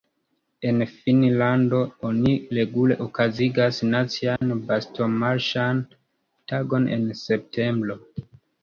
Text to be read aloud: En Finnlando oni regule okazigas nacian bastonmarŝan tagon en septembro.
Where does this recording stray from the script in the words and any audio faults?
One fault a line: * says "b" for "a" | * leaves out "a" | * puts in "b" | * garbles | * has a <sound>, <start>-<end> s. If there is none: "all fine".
* has a dropout, 4.4-4.4 s